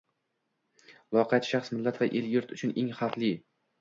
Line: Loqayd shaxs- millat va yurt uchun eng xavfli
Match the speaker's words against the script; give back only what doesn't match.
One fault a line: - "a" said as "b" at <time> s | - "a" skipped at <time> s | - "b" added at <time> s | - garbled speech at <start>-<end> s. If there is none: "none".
- "el" added at 2.2 s